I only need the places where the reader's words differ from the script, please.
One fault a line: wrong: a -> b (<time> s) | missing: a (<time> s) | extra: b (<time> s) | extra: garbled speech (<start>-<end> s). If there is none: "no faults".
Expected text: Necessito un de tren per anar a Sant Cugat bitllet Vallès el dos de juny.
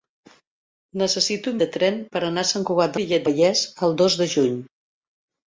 no faults